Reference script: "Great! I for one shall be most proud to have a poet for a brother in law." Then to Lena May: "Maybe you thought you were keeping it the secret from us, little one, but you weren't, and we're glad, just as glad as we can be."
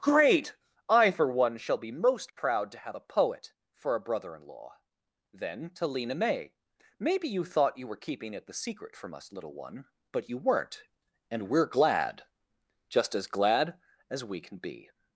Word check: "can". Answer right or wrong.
right